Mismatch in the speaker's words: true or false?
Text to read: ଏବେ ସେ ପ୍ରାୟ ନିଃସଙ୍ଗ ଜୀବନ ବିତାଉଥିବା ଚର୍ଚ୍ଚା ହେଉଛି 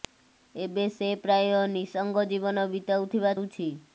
true